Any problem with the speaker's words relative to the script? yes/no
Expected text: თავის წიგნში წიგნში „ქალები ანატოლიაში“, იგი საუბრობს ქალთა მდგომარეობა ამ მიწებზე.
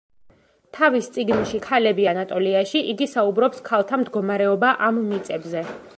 yes